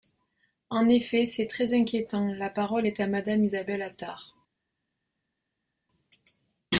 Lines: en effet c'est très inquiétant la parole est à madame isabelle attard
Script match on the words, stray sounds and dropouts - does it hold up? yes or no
yes